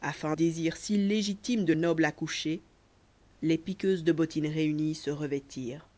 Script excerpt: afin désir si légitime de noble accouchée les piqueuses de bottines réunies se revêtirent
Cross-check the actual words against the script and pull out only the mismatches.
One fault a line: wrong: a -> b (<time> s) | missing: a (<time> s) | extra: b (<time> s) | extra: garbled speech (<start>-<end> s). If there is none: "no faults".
no faults